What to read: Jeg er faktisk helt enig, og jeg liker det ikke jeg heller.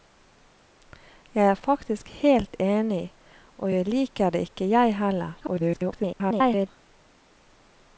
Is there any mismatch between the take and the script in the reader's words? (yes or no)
yes